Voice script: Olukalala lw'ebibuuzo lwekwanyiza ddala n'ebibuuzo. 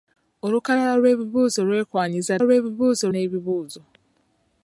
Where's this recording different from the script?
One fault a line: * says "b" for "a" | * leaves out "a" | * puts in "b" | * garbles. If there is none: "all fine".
* says "lw'ebibuuzo" for "ddala"